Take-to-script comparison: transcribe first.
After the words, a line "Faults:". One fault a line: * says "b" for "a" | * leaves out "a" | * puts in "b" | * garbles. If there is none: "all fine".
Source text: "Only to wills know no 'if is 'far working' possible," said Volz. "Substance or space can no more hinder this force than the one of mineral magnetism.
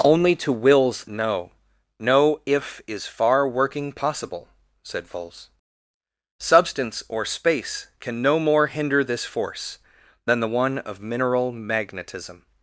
"Only to wills know no 'if is 'far working' possible," said Volz. "Substance or space can no more hinder this force than the one of mineral magnetism.
Faults:
all fine